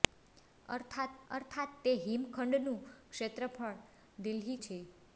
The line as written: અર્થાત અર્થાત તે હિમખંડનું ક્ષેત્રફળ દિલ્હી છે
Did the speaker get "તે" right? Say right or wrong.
right